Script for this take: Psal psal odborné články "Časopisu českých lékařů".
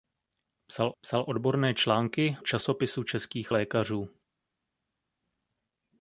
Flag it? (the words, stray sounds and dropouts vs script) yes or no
no